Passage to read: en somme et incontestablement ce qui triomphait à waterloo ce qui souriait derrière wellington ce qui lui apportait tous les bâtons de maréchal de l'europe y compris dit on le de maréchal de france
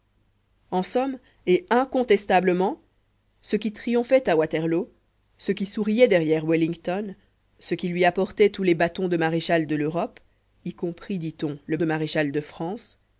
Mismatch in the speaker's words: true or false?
false